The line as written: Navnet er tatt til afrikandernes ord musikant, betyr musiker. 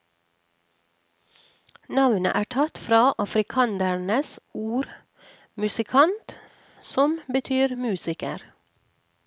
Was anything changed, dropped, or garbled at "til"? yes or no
yes